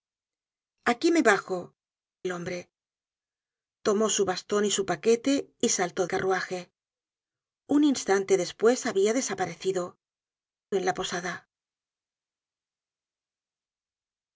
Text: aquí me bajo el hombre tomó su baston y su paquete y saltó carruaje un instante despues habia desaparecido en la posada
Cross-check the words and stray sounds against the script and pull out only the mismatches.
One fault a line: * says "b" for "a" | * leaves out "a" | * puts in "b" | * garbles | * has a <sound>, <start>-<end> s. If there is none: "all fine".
all fine